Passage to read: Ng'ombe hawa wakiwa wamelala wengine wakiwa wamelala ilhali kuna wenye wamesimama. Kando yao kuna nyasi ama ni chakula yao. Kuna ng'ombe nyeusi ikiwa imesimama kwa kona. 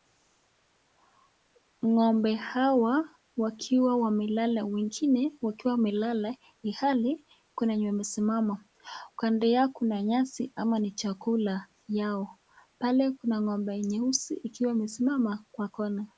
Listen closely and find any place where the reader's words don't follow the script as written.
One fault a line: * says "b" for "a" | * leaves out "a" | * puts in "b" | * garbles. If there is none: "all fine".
* puts in "Pale"